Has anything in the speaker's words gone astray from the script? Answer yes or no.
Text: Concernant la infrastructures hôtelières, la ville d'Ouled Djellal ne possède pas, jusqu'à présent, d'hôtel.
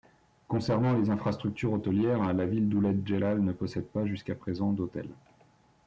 yes